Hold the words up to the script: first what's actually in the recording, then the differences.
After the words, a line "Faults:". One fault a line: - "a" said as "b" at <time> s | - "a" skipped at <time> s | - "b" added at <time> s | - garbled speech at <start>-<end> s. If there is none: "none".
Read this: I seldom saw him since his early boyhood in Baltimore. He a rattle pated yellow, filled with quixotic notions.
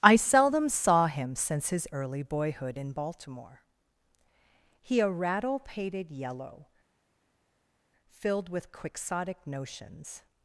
I seldom saw him since his early boyhood in Baltimore. He a rattle pated yellow, filled with quixotic notions.
Faults:
none